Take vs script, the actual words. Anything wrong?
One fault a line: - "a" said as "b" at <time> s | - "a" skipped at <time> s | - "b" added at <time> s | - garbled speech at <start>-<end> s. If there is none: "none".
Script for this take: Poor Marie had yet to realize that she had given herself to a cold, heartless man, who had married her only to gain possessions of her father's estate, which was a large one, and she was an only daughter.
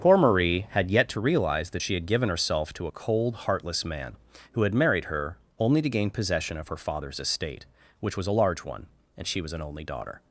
- "possessions" said as "possession" at 6.1 s